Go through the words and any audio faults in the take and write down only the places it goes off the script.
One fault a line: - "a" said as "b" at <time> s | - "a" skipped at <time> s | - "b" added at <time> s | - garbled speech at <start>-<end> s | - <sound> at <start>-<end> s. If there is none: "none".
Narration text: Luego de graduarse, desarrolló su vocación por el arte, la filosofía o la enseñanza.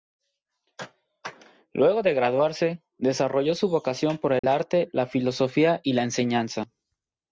- dropout at 4.4-4.4 s
- "o" said as "y" at 5.8 s